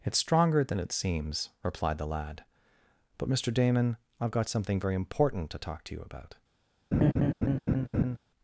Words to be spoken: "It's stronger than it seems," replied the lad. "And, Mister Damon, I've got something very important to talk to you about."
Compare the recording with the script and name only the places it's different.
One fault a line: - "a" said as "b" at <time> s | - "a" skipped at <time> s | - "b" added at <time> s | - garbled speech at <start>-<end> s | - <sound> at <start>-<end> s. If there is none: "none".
- "And" said as "But" at 3.2 s
- laugh at 6.9-8.2 s